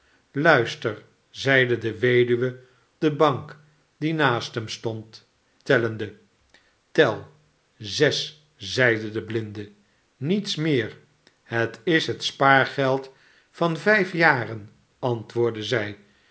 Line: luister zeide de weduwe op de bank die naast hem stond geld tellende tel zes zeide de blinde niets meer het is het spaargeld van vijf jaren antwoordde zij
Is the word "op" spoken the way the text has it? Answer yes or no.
no